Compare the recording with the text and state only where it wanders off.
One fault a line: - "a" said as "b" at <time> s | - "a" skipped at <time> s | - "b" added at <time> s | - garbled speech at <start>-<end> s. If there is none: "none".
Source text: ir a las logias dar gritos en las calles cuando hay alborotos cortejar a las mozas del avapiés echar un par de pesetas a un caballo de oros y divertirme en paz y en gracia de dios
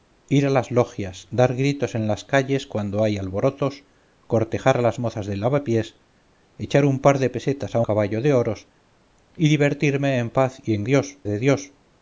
- "un" skipped at 7.8 s
- "gracia" said as "dios" at 10.8 s